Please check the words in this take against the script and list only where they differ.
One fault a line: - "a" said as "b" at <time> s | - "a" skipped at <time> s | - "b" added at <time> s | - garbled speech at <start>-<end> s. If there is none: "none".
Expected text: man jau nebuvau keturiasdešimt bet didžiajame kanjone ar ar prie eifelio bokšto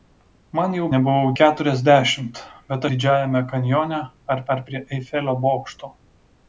none